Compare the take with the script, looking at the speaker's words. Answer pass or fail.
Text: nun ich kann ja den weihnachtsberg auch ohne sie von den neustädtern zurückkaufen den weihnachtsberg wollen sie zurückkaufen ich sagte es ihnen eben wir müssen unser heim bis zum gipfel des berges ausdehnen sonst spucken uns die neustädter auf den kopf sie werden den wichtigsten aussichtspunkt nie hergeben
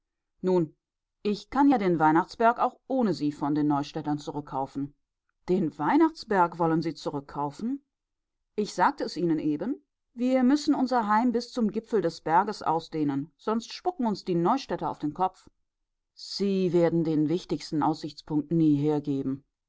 pass